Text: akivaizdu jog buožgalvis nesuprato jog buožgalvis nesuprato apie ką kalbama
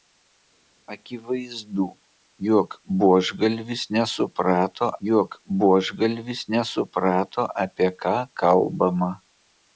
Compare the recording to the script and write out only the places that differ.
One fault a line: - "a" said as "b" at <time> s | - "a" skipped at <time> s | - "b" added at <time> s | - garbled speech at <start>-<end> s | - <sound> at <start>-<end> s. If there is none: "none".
none